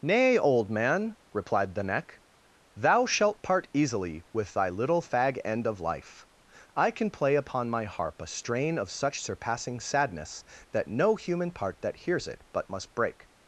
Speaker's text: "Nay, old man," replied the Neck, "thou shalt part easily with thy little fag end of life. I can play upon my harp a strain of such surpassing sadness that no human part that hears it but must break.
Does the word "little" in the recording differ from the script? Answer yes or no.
no